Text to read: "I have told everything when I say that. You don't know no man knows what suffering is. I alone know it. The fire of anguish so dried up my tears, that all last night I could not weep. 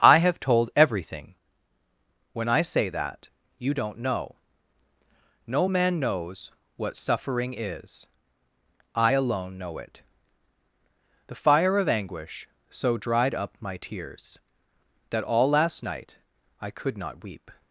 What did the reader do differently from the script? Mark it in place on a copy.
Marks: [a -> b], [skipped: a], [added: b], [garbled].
"I have told everything when I say that. You don't know no man knows what suffering is. I alone know it. The fire of anguish so dried up my tears, that all last night I could not weep.